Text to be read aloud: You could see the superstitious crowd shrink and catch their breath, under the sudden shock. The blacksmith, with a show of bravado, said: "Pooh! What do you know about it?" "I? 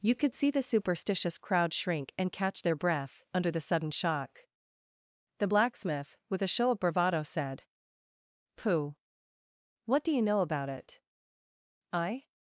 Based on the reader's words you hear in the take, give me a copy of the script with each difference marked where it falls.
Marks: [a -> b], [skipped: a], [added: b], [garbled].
You could see the superstitious crowd shrink and catch their breath, under the sudden shock. The blacksmith, with a show of bravado, said: "Pooh! What do you know about it?" "I?